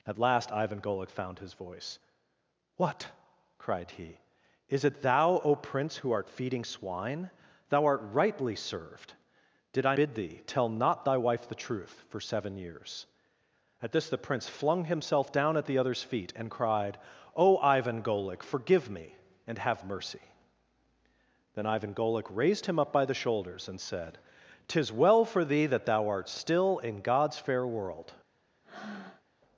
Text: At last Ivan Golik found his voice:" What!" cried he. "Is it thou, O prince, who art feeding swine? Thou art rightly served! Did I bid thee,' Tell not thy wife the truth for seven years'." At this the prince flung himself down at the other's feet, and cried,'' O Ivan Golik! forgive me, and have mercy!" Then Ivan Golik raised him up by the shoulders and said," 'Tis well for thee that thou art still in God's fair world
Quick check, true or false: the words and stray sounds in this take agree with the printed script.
false